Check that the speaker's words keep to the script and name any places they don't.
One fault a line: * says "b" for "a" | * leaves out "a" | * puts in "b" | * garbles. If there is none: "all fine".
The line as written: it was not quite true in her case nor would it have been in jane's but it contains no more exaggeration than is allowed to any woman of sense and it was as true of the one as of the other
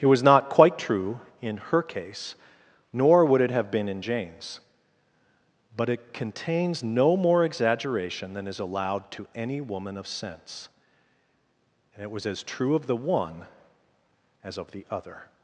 all fine